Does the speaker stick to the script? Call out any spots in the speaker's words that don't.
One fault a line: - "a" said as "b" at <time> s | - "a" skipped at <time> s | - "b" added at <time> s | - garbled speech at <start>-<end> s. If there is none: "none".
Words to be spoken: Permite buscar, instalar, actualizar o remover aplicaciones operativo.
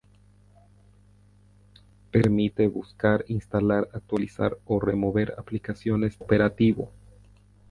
none